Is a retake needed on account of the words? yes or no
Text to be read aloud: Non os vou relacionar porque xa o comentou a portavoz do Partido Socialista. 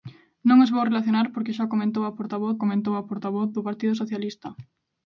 yes